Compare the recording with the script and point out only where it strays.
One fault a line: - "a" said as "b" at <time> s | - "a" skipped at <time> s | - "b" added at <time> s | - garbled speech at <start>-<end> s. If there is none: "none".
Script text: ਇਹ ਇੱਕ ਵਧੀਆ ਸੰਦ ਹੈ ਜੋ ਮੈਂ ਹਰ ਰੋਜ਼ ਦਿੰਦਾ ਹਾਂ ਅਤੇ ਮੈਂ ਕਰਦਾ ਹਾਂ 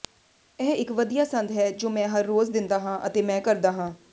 none